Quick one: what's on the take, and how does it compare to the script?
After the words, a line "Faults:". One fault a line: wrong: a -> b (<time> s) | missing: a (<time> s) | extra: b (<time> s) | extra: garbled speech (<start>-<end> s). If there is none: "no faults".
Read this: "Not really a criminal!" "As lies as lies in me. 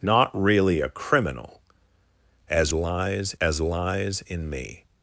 "Not really a criminal!" "As lies as lies in me.
Faults:
no faults